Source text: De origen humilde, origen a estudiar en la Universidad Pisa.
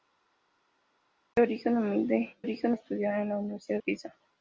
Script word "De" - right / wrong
right